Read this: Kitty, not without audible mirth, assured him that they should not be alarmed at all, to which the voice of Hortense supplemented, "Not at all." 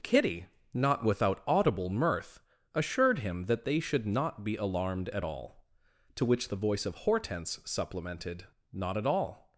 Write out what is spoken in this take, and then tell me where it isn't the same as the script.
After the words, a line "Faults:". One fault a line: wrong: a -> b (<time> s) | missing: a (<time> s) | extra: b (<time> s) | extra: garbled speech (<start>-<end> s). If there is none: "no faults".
Kitty, not without audible mirth, assured him that they should not be alarmed at all, to which the voice of Hortense supplemented, "Not at all."
Faults:
no faults